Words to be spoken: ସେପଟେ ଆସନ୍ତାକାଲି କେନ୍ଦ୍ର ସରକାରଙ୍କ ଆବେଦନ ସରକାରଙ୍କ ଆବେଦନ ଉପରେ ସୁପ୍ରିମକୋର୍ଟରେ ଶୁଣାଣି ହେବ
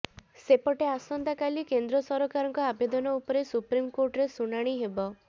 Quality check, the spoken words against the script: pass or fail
fail